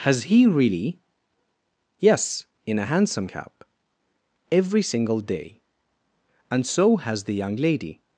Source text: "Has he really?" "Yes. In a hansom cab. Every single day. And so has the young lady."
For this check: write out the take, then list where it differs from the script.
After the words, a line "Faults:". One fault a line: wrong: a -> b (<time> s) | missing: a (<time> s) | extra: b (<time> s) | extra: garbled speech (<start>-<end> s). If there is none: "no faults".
"Has he really?" "Yes. In a hansom cab. Every single day. And so has the young lady."
Faults:
no faults